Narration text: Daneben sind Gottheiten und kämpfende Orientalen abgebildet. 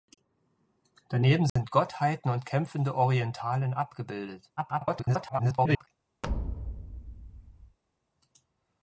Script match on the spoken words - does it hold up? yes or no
no